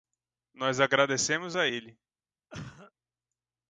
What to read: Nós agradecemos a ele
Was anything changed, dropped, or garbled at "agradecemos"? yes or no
no